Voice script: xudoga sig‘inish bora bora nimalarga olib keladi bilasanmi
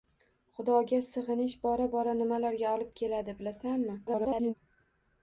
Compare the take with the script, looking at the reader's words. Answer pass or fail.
fail